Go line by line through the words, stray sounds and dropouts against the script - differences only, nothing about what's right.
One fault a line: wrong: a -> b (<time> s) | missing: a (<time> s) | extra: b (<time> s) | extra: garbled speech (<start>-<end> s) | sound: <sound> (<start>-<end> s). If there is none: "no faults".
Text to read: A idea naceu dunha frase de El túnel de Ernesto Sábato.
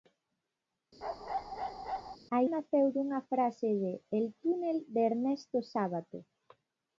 sound: bark (1.0-2.2 s)
missing: idea (2.4 s)